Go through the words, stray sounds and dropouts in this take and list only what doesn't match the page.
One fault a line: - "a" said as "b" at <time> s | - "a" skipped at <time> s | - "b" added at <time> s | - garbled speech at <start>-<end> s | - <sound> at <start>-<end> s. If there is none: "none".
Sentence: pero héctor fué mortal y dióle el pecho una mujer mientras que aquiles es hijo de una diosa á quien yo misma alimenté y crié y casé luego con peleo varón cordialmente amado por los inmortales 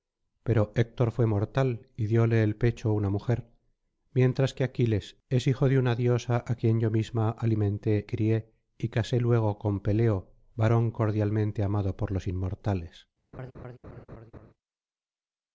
- "y" skipped at 8.1 s
- laugh at 13.3-14.5 s